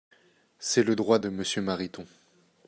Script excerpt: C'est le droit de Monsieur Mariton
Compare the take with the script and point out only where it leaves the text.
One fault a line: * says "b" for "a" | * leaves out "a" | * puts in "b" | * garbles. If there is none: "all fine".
all fine